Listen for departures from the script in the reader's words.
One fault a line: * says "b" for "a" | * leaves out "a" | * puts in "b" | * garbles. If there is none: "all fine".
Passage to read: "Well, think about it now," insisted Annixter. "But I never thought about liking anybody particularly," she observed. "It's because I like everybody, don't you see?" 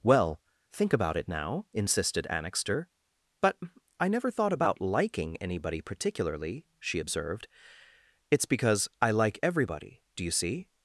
* says "do" for "don't"